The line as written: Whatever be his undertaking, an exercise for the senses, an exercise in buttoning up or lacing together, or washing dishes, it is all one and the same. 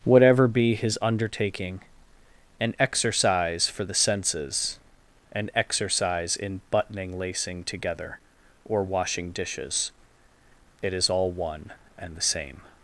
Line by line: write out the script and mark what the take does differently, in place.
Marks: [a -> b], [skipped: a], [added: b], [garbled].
Whatever be his undertaking, an exercise for the senses, an exercise in buttoning [skipped: up or] lacing together, or washing dishes, it is all one and the same.